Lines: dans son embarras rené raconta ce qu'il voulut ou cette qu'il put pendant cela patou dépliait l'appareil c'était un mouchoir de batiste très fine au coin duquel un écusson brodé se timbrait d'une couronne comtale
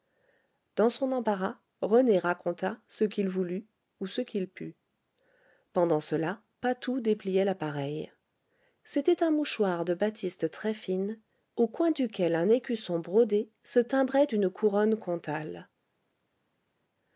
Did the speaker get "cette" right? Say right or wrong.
wrong